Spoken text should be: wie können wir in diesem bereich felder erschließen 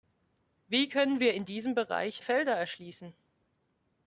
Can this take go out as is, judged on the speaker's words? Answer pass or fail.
pass